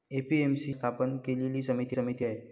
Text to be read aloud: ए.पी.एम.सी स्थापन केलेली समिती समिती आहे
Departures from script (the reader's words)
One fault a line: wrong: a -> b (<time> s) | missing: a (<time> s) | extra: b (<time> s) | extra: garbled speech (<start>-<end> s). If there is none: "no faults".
no faults